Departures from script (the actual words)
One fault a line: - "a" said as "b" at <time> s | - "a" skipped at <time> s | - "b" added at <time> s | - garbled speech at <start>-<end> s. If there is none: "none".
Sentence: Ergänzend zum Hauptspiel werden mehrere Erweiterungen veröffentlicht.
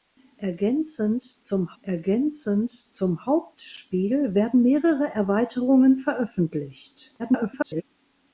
- "ergänzend zum" added at 1.8 s
- garbled speech at 7.2-7.8 s